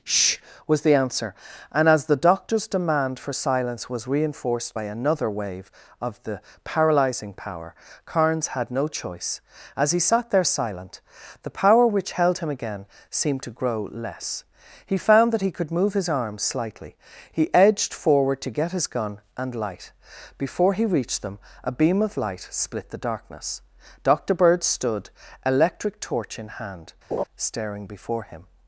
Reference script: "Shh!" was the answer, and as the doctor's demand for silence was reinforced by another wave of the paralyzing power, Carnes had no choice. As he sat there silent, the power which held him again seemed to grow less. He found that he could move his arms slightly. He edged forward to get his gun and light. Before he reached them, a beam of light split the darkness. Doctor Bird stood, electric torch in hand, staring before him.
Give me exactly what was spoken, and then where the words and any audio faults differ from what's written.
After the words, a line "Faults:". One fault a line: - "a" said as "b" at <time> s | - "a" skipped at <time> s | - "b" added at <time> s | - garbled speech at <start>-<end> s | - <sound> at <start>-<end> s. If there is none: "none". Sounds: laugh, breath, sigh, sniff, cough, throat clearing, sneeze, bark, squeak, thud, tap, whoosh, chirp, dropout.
"Shh!" was the answer, and as the doctor's demand for silence was reinforced by another wave of the paralyzing power, Carnes had no choice. As he sat there silent, the power which held him again seemed to grow less. He found that he could move his arms slightly. He edged forward to get his gun and light. Before he reached them, a beam of light split the darkness. Doctor Bird stood, electric torch in hand, staring before him.
Faults:
- laugh at 27.1-27.2 s